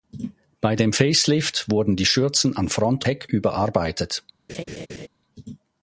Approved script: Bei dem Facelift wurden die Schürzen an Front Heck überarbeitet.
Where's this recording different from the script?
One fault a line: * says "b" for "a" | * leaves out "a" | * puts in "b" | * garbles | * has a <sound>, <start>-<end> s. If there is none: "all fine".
* has a laugh, 4.5-5.1 s